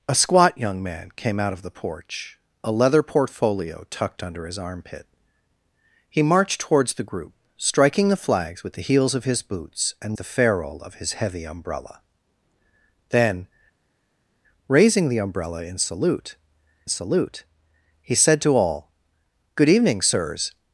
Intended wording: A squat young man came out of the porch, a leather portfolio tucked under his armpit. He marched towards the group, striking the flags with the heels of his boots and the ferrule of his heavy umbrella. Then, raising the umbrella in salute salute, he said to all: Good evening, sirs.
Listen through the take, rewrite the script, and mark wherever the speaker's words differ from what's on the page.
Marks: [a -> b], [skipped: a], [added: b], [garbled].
A squat young man came out of the porch, a leather portfolio tucked under his armpit. He marched towards the group, striking the flags with the heels of his boots and the ferrule of his heavy umbrella. Then, raising the umbrella in salute salute, he said to all: Good evening, sirs.